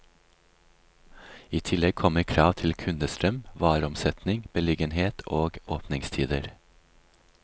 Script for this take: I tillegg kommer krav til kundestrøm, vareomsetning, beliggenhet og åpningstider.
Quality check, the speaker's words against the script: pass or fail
pass